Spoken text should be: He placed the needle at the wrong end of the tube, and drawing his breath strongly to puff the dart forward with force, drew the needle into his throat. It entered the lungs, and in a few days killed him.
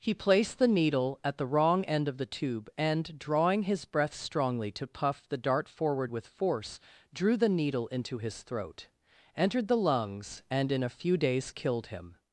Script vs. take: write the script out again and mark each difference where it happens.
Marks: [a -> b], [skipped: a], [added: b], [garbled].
He placed the needle at the wrong end of the tube, and drawing his breath strongly to puff the dart forward with force, drew the needle into his throat. [skipped: It] entered the lungs, and in a few days killed him.